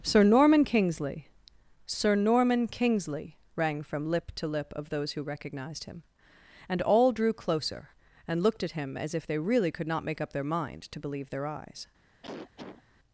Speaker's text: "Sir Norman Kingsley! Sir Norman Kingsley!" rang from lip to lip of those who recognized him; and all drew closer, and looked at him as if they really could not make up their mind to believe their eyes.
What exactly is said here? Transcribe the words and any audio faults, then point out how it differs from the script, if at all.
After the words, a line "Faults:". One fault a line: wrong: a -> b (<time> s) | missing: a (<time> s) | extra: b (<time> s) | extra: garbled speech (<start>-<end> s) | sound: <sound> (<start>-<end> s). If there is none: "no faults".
"Sir Norman Kingsley! Sir Norman Kingsley!" rang from lip to lip of those who recognized him; and all drew closer, and looked at him as if they really could not make up their mind to believe their eyes.
Faults:
sound: cough (12.2-12.8 s)